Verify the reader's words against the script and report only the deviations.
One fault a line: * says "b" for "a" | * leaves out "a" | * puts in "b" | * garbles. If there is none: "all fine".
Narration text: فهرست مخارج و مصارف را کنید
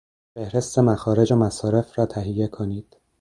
* puts in "تهیه"